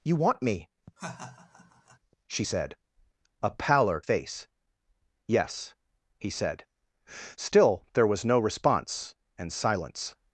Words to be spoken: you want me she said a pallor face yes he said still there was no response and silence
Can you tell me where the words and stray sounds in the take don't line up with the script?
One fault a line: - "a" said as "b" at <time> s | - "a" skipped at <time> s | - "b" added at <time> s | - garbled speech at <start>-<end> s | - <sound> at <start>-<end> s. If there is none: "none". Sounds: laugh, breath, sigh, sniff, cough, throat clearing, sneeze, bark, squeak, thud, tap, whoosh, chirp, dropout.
- laugh at 1.0-2.0 s